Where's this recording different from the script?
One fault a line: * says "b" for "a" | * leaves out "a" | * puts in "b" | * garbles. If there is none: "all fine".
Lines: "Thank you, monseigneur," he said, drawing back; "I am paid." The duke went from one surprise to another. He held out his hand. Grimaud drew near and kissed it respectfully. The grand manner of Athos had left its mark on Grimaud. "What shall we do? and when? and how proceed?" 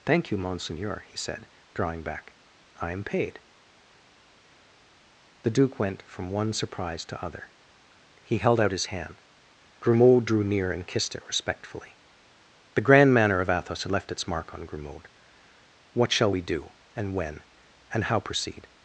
* says "other" for "another"